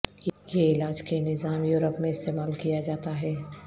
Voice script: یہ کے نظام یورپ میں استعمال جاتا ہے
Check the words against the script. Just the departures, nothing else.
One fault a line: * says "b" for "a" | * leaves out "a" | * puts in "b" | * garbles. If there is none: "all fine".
* puts in "علاج"
* puts in "کیا"